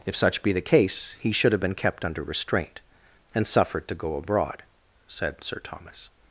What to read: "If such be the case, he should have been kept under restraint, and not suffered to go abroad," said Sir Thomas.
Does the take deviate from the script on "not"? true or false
true